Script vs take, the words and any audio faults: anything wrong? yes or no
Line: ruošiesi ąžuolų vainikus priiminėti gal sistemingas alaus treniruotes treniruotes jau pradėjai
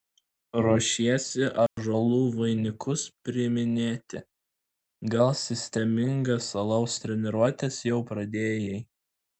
yes